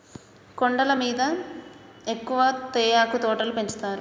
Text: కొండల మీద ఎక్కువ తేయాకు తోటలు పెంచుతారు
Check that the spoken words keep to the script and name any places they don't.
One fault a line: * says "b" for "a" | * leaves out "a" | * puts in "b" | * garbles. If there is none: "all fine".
all fine